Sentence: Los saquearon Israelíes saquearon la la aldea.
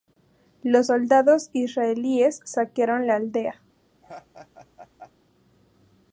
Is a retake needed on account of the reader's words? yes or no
yes